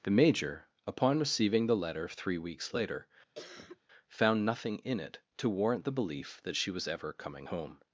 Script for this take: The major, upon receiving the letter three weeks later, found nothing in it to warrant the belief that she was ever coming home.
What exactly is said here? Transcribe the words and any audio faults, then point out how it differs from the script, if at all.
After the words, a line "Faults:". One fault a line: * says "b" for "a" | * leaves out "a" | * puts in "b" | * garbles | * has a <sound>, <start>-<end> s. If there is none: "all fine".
The major, upon receiving the letter three weeks later, found nothing in it to warrant the belief that she was ever coming home.
Faults:
* has a cough, 3.4-3.8 s